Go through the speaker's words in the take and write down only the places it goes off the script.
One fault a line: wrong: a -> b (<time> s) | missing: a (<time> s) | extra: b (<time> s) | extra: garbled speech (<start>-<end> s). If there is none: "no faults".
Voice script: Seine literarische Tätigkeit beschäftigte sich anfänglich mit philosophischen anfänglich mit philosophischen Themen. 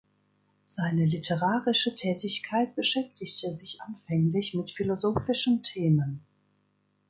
missing: anfänglich mit philosophischen (5.6 s)